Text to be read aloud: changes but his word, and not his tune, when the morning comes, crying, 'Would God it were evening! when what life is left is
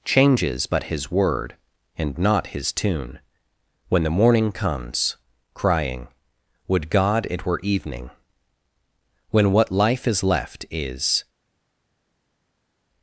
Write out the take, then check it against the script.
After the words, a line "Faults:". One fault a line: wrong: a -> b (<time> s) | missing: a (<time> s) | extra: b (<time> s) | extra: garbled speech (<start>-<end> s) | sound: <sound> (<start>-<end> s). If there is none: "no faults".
changes but his word, and not his tune, when the morning comes, crying, 'Would God it were evening! when what life is left is
Faults:
no faults